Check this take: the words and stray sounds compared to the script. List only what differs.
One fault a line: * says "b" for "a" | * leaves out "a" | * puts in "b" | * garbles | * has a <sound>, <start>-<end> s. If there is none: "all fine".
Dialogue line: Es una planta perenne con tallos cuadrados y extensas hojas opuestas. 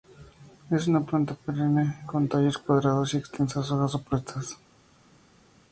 all fine